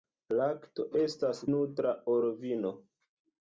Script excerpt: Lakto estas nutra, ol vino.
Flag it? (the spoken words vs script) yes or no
no